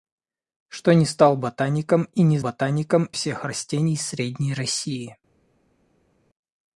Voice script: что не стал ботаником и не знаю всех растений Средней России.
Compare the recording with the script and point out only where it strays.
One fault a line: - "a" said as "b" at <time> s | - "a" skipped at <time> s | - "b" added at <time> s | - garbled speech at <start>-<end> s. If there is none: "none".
- "знаю" said as "ботаником" at 2.4 s